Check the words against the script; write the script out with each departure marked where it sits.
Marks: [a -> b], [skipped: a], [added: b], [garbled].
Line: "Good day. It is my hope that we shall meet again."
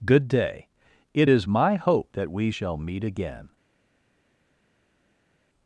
"Good day. It is my hope that we shall meet again."